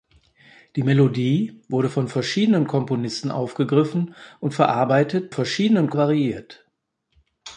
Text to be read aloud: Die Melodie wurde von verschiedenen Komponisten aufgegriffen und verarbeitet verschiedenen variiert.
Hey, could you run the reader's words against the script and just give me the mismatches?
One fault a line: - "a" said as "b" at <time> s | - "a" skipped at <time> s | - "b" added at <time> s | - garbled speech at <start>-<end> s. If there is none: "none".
none